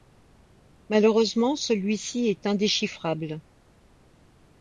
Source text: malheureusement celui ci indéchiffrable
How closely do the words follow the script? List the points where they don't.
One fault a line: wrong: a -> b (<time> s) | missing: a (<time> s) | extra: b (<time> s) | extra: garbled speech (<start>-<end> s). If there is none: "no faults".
extra: est (2.3 s)